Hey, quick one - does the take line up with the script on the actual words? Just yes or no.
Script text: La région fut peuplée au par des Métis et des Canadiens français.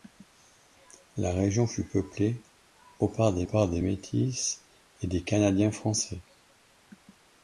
no